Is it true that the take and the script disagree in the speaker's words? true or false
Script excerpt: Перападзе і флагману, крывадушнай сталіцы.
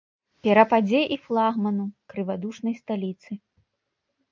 false